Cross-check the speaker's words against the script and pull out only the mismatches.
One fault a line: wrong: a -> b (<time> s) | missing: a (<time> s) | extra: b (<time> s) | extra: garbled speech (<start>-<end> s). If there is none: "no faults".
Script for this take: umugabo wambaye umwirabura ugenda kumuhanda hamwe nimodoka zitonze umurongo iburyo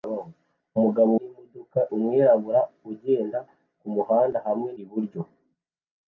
wrong: wambaye -> nimodoka (1.2 s)
missing: nimodoka zitonze umurongo (4.7 s)